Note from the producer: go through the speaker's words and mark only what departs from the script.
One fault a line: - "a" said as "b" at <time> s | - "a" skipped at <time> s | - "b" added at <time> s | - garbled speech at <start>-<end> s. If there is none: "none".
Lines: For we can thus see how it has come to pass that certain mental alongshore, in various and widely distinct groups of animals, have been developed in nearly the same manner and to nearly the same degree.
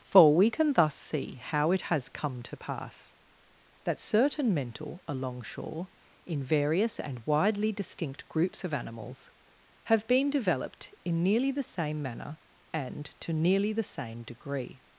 none